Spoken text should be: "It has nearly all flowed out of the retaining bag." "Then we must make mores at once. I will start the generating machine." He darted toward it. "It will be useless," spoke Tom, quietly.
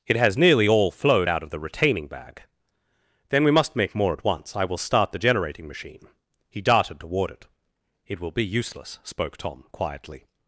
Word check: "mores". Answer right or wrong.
wrong